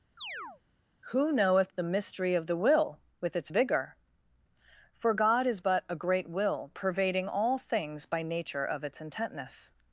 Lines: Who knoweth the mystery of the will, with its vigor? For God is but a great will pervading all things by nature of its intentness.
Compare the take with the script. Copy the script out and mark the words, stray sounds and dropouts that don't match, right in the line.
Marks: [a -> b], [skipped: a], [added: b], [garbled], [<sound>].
[chirp] Who knoweth the mystery of the will, with its vigor? For God is but a great will pervading all things by nature of its intentness.